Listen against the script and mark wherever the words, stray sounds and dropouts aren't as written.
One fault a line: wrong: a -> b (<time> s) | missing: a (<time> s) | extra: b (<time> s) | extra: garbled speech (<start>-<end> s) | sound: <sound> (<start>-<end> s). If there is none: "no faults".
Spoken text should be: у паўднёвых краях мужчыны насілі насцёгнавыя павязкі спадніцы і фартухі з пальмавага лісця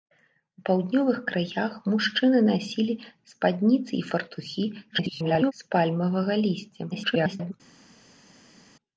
missing: насцёгнавыя павязкі (2.9 s)
extra: garbled speech (4.9-5.5 s)
extra: garbled speech (6.9-7.5 s)